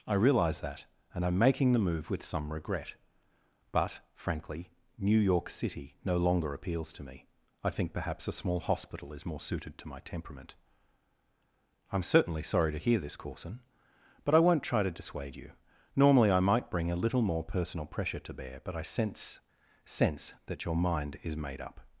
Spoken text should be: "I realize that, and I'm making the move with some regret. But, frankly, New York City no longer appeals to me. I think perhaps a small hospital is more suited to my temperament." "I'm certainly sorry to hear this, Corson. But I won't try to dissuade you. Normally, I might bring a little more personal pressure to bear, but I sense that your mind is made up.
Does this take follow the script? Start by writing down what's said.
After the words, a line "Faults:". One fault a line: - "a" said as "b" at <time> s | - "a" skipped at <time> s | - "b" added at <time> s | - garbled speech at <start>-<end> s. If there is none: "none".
"I realize that, and I'm making the move with some regret. But, frankly, New York City no longer appeals to me. I think perhaps a small hospital is more suited to my temperament." "I'm certainly sorry to hear this, Corson. But I won't try to dissuade you. Normally, I might bring a little more personal pressure to bear, but I sense sense that your mind is made up.
Faults:
- "sense" added at 19.8 s